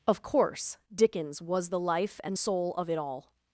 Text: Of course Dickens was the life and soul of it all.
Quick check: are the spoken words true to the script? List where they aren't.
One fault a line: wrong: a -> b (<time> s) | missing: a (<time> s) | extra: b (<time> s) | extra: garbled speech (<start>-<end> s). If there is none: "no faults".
no faults